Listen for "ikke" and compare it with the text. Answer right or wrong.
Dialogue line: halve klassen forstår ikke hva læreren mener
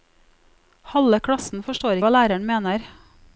wrong